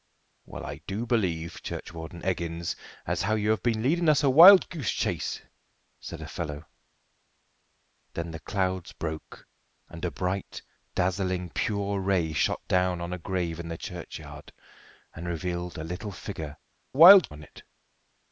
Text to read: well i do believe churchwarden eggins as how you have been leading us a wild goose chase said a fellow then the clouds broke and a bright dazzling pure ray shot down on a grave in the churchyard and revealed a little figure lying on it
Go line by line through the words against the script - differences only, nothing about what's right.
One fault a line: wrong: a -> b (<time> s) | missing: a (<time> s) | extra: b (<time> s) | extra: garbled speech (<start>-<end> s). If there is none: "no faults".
wrong: lying -> wild (16.9 s)